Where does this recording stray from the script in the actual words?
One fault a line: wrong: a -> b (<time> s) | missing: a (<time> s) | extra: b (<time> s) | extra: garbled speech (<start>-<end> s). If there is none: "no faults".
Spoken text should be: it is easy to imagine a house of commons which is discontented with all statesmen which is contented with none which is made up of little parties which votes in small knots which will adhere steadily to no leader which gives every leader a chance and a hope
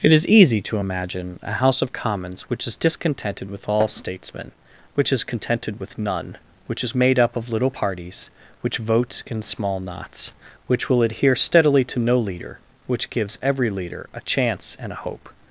no faults